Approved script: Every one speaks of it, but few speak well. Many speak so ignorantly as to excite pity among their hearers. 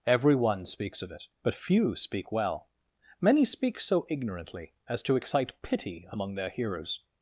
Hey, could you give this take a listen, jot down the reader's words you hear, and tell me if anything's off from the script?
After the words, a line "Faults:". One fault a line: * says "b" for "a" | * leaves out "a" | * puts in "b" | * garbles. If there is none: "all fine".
Every one speaks of it, but few speak well. Many speak so ignorantly as to excite pity among their hearers.
Faults:
all fine